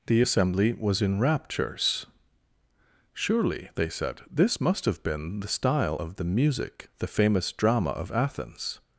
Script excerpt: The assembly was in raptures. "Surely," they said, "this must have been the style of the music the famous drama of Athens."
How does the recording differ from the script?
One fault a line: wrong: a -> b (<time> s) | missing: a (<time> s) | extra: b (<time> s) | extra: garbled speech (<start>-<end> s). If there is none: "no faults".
no faults